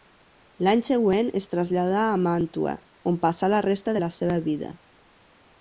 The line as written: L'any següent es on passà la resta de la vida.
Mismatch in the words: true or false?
true